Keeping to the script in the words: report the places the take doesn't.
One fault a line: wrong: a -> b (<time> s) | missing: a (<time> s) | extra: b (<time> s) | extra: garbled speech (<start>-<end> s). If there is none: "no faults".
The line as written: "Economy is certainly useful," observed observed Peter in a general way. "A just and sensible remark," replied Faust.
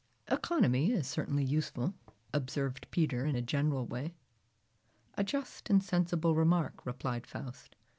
missing: observed (2.9 s)